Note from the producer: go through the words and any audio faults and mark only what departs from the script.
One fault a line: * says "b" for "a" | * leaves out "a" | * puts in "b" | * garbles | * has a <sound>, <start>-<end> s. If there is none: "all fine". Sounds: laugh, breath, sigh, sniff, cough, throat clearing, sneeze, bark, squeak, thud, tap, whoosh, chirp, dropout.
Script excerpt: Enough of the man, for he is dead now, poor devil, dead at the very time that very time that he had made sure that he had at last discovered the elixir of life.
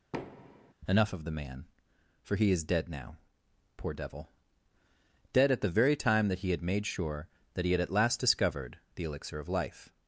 * has a thud, 0.1-0.7 s
* leaves out "very time that"